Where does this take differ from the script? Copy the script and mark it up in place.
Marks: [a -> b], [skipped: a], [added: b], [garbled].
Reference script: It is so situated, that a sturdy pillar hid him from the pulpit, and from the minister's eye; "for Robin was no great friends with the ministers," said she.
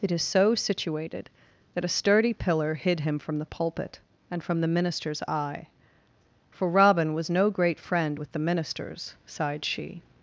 It is so situated, that a sturdy pillar hid him from the pulpit, and from the minister's eye; "for Robin was no great [friends -> friend] with the ministers," [said -> sighed] she.